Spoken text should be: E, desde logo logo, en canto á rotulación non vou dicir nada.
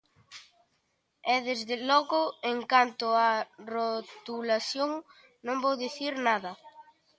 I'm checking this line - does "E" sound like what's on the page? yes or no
yes